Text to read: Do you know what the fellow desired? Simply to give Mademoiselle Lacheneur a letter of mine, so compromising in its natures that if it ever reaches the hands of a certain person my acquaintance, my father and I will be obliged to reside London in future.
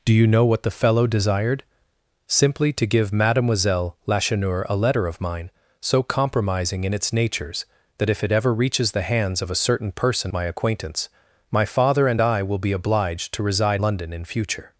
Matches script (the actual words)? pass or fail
pass